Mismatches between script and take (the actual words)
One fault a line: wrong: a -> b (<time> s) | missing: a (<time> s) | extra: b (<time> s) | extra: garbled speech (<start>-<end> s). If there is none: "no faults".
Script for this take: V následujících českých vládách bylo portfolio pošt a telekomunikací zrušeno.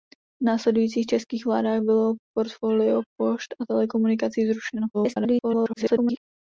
extra: garbled speech (4.9-6.2 s)